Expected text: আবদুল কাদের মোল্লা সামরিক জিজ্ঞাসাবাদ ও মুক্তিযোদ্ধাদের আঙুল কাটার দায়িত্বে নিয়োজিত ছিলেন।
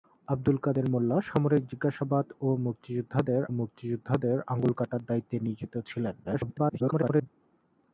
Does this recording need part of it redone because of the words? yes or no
yes